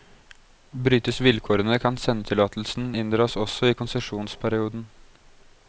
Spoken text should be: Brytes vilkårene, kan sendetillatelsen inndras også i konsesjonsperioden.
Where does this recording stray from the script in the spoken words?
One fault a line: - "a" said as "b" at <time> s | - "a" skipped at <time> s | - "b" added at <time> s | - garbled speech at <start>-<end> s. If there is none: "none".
none